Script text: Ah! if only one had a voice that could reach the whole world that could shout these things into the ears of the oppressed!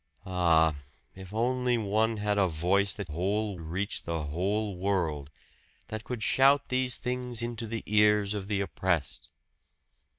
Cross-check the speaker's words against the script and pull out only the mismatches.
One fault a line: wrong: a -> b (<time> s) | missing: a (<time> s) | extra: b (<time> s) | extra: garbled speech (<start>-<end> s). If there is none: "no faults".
wrong: could -> whole (3.1 s)